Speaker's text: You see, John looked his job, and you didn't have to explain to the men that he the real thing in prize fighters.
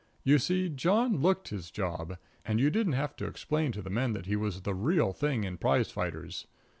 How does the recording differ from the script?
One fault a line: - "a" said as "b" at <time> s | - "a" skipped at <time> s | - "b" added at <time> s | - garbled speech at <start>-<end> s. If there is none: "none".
- "was" added at 4.3 s